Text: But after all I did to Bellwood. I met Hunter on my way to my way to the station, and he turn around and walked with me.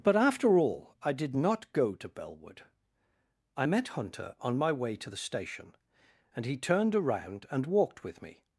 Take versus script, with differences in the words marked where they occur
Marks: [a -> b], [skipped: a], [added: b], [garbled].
But after all I did [added: not go] to Bellwood. I met Hunter on my way to [skipped: my way to] the station, and he [turn -> turned] around and walked with me.